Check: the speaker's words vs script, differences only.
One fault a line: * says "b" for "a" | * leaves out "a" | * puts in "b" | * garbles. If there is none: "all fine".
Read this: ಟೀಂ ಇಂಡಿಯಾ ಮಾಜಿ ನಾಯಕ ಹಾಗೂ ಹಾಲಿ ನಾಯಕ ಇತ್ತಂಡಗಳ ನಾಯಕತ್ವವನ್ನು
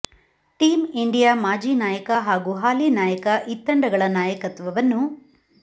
all fine